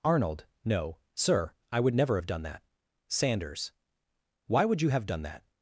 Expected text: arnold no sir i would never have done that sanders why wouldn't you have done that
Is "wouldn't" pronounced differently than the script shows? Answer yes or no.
yes